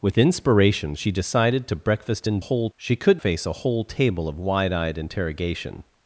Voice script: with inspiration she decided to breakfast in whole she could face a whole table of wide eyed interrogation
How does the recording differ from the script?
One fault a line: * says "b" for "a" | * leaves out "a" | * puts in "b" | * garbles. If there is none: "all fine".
all fine